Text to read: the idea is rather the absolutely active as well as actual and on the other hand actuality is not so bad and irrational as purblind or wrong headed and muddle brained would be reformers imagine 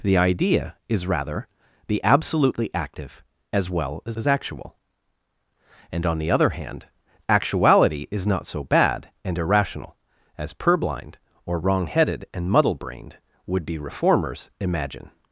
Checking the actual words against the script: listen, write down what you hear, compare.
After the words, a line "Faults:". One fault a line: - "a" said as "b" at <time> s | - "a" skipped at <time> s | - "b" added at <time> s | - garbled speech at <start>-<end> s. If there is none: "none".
the idea is rather the absolutely active as well as as actual and on the other hand actuality is not so bad and irrational as purblind or wrong headed and muddle brained would be reformers imagine
Faults:
- "as" added at 4.1 s